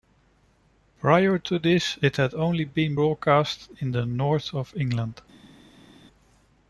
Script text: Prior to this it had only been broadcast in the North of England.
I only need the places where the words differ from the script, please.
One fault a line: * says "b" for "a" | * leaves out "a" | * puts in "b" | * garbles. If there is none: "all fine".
all fine